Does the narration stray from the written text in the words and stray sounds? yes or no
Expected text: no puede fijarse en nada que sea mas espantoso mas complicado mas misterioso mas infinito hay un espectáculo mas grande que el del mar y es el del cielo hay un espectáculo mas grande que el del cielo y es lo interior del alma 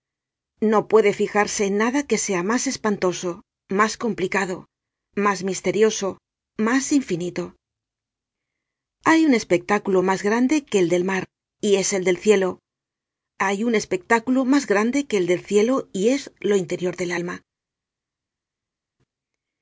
no